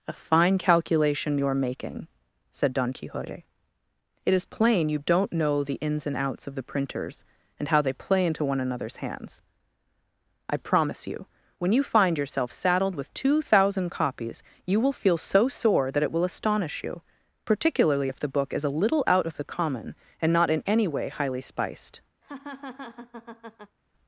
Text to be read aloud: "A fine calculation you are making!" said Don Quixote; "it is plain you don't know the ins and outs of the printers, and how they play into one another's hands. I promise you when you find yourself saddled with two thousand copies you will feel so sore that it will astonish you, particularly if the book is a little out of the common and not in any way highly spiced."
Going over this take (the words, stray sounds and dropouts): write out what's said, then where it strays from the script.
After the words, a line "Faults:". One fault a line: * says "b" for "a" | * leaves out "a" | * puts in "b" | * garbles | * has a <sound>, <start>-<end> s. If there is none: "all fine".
"A fine calculation you are making!" said Don Quixote; "it is plain you don't know the ins and outs of the printers, and how they play into one another's hands. I promise you when you find yourself saddled with two thousand copies you will feel so sore that it will astonish you, particularly if the book is a little out of the common and not in any way highly spiced."
Faults:
* has a laugh, 22.2-23.8 s